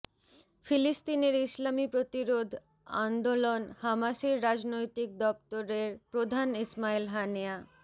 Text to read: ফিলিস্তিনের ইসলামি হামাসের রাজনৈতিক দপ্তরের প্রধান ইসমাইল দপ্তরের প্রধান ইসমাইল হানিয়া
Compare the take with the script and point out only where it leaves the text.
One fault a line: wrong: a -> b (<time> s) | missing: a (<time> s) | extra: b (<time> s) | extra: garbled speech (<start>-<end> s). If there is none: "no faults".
extra: প্রতিরোধ আন্দোলন (1.9 s)
missing: দপ্তরের প্রধান ইসমাইল (7.0 s)